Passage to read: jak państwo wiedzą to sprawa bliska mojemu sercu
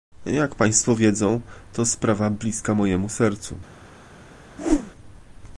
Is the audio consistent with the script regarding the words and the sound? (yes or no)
no